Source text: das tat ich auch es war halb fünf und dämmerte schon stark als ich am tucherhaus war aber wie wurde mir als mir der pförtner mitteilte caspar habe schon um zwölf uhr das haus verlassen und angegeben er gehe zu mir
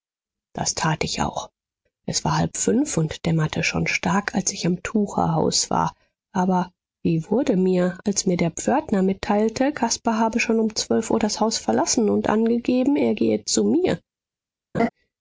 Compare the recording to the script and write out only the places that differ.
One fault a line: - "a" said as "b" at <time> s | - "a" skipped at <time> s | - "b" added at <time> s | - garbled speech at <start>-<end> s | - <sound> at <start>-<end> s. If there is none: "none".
- laugh at 14.7-14.9 s